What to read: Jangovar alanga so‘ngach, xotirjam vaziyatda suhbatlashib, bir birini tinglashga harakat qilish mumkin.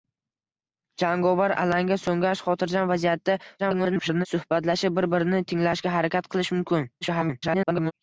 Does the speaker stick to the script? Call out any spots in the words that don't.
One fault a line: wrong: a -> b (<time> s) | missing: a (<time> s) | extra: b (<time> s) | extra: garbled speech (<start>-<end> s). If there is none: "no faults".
extra: garbled speech (3.6-4.3 s)
extra: garbled speech (7.0-7.9 s)